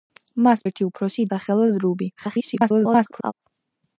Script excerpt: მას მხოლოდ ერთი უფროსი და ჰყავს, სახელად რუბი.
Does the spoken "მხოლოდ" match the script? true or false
false